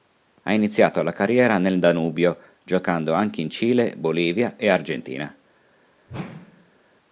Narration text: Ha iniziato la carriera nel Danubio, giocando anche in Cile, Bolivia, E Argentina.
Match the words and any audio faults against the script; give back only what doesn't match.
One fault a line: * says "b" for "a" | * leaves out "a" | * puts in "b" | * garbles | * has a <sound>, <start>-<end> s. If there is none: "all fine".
* has a whoosh, 6.1-6.8 s